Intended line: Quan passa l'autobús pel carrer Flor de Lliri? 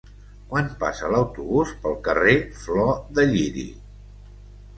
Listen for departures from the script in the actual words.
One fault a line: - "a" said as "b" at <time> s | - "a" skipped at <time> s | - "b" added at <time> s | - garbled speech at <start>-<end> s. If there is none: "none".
none